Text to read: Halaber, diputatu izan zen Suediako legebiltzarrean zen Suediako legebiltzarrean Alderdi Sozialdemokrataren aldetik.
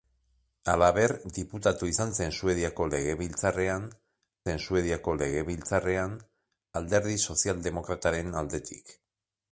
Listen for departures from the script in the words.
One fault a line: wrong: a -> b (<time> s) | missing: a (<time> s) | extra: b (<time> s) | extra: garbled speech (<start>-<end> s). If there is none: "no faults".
no faults